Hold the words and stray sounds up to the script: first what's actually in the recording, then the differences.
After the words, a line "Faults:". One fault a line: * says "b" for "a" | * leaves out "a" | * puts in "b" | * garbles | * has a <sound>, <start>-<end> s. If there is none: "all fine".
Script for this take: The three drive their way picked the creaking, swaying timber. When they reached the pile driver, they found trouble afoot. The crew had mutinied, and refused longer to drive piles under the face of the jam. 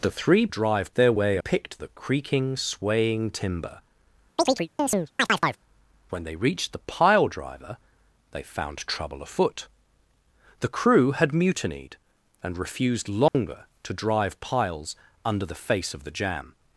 The three drive their way picked the creaking, swaying timber. When they reached the pile driver, they found trouble afoot. The crew had mutinied, and refused longer to drive piles under the face of the jam.
Faults:
* has a chirp, 4.4-5.6 s
* has a dropout, 13.3-13.3 s